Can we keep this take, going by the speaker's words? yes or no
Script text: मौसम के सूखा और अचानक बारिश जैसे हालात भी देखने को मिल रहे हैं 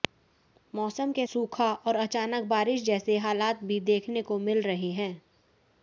yes